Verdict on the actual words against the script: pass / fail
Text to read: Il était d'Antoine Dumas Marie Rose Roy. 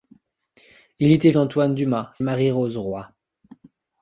pass